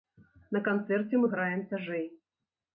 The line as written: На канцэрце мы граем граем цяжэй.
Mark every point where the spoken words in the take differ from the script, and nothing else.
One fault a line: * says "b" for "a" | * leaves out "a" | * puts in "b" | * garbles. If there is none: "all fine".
* leaves out "граем"